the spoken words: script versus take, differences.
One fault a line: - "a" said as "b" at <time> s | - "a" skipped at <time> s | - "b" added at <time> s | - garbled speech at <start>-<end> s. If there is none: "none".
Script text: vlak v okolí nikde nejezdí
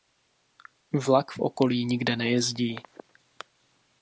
none